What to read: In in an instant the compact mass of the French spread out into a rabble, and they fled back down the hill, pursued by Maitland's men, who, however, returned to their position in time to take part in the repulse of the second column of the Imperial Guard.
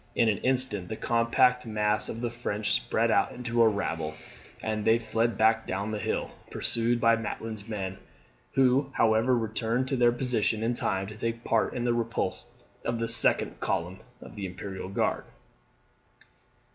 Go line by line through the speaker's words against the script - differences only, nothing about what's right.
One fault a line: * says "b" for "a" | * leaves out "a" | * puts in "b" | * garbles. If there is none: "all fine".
* leaves out "in"